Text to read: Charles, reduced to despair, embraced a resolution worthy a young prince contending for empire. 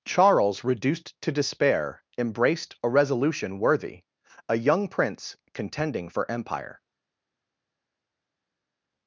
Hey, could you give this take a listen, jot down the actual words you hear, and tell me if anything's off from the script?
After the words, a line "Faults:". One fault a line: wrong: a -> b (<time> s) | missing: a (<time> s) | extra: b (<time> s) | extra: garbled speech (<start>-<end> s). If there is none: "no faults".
Charles, reduced to despair, embraced a resolution worthy a young prince contending for empire.
Faults:
no faults